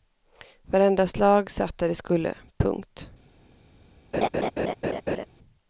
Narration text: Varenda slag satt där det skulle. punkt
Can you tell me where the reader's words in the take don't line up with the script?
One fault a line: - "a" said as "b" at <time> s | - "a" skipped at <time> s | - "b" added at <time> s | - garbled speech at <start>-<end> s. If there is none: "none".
none